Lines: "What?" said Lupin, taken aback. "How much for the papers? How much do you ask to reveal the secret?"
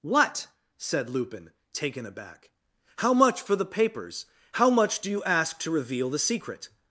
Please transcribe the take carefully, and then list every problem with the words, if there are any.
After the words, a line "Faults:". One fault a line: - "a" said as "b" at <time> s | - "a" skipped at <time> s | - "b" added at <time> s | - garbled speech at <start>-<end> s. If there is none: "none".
"What?" said Lupin, taken aback. "How much for the papers? How much do you ask to reveal the secret?"
Faults:
none